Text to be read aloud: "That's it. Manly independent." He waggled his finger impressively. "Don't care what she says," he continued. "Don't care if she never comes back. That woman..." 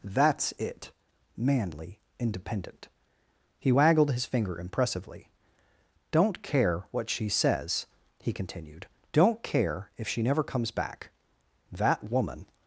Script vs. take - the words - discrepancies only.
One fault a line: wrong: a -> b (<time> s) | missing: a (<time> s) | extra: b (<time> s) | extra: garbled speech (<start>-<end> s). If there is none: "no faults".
no faults